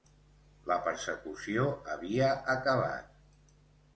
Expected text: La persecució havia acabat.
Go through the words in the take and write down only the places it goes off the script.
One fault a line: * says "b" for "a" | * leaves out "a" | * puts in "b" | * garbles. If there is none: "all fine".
all fine